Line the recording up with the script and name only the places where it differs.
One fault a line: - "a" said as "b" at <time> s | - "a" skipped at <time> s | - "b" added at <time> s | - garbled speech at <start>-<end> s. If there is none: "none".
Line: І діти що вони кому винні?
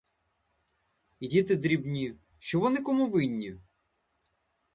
- "дрібні" added at 1.5 s